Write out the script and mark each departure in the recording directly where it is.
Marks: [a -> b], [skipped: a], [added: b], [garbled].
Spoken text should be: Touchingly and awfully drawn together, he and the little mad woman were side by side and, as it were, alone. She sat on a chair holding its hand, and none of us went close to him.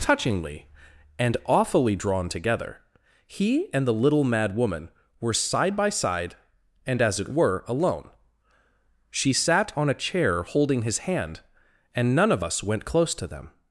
Touchingly and awfully drawn together, he and the little mad woman were side by side and, as it were, alone. She sat on a chair holding [its -> his] hand, and none of us went close to [him. -> them]